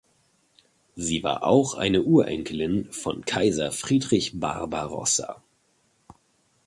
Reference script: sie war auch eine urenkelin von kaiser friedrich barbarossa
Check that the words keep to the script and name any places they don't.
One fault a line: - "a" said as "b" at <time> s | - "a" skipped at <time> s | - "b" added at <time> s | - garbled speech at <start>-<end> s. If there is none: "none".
none